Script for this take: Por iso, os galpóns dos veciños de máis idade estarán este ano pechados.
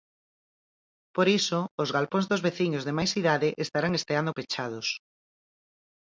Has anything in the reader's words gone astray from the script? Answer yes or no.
no